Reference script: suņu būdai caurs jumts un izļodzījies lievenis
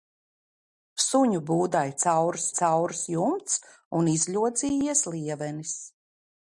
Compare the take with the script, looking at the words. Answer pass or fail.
fail